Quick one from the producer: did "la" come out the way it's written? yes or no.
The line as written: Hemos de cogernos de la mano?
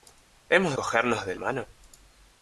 no